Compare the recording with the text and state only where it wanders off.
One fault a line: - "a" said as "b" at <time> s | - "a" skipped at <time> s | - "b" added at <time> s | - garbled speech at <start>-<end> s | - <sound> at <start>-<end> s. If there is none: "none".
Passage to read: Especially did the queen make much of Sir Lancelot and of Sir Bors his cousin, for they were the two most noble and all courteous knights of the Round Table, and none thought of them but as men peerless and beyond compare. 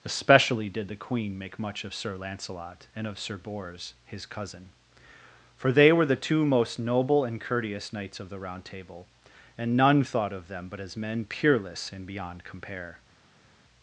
- "all" skipped at 7.4 s